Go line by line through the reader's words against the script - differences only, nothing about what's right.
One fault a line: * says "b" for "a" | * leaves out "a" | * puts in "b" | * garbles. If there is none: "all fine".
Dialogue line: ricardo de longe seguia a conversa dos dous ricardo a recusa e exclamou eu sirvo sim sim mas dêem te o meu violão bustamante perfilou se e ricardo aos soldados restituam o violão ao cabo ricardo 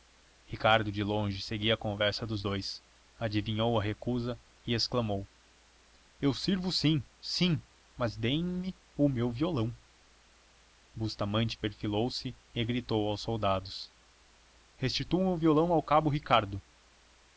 * says "adivinhou" for "ricardo"
* says "me" for "te"
* says "gritou" for "ricardo"